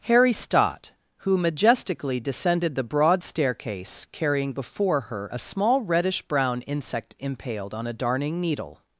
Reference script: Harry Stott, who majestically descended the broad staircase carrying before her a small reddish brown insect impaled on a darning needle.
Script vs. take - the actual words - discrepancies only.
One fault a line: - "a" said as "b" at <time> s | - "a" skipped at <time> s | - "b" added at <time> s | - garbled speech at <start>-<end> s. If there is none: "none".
none